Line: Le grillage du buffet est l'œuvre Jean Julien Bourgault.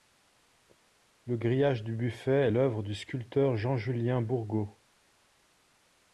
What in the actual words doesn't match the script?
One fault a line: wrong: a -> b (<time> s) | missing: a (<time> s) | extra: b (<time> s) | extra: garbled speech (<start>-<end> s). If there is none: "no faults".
extra: du sculpteur (2.8 s)